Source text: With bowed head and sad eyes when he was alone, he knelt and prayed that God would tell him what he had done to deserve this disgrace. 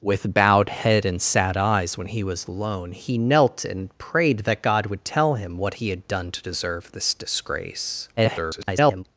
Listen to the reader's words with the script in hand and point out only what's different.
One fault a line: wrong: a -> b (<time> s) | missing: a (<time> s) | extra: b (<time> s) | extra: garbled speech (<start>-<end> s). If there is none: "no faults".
extra: garbled speech (8.2-9.0 s)